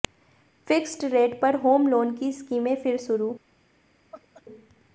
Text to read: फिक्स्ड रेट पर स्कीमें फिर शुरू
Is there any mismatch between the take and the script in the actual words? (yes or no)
yes